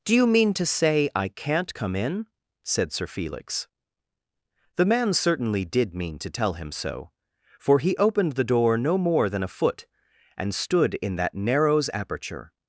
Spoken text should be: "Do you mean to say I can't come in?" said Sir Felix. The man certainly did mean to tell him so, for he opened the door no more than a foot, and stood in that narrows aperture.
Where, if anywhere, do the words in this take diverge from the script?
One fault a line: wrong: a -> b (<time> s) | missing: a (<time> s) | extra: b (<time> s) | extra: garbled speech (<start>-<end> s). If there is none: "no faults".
no faults